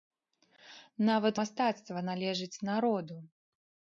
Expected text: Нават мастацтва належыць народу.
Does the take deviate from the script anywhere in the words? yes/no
no